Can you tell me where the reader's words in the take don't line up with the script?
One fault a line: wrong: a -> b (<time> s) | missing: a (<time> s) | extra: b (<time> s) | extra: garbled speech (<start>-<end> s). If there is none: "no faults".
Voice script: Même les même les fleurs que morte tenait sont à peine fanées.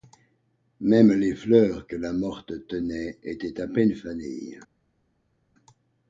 missing: même les (1.4 s)
extra: la (1.9 s)
wrong: sont -> étaient (3.2 s)